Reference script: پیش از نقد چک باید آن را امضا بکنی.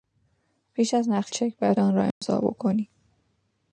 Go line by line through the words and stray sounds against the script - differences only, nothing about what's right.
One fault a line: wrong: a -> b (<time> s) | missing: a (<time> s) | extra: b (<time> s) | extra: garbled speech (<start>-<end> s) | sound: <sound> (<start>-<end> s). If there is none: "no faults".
sound: dropout (2.1-2.2 s)